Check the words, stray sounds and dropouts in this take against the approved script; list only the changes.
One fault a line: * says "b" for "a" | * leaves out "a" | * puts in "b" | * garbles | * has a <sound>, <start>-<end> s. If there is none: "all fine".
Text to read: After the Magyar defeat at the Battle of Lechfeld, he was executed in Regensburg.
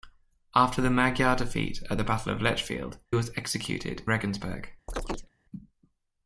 * leaves out "he"
* leaves out "in"
* has a chirp, 4.9-5.3 s